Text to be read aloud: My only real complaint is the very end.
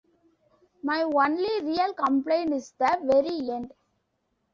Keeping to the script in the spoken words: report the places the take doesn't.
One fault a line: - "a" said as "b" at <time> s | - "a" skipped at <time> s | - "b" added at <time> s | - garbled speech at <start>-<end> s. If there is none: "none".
none